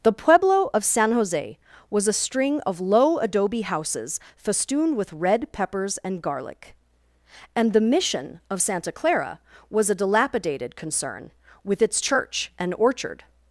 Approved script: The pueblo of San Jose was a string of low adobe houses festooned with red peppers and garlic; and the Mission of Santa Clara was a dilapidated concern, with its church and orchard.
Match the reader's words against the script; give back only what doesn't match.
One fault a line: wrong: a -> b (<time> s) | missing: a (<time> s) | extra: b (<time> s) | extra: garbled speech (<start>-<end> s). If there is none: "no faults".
no faults